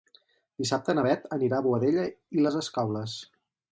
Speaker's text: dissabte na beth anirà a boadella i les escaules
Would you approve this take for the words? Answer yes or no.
yes